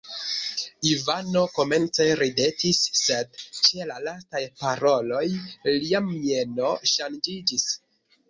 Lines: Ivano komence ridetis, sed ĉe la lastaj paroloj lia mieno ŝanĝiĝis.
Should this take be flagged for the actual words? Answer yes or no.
no